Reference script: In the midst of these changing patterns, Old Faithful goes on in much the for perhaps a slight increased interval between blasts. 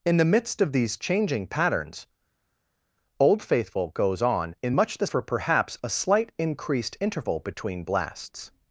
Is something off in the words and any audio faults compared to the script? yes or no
no